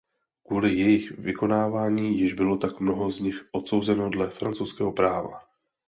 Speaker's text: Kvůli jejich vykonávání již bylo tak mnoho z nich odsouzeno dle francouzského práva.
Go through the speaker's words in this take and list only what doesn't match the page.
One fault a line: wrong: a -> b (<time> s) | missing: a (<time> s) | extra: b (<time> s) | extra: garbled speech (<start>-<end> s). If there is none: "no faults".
no faults